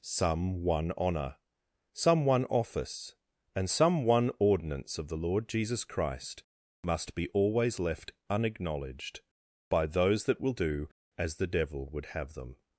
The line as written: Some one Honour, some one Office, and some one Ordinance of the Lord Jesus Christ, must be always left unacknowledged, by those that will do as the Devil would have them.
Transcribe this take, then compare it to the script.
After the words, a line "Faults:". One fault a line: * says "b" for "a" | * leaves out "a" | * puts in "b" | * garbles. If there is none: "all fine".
Some one Honour, some one Office, and some one Ordinance of the Lord Jesus Christ, must be always left unacknowledged, by those that will do as the Devil would have them.
Faults:
all fine